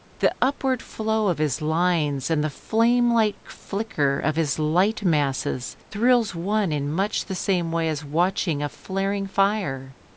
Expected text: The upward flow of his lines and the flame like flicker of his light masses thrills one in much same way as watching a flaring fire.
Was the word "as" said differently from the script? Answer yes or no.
no